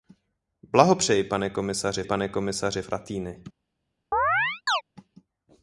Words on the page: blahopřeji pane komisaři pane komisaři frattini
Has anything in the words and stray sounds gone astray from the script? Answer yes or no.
yes